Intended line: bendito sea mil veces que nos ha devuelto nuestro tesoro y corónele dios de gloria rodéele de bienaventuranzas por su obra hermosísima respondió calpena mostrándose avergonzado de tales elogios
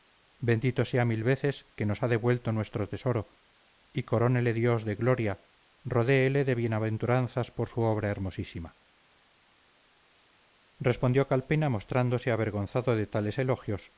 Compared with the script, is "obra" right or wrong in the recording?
right